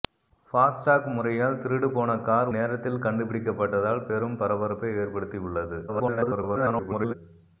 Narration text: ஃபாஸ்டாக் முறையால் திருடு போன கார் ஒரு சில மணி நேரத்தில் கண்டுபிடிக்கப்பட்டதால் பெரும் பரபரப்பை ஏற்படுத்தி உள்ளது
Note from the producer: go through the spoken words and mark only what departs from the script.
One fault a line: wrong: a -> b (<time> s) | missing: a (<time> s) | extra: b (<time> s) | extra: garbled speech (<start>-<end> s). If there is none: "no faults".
missing: ஒரு சில மணி (2.5 s)
extra: garbled speech (5.9-7.1 s)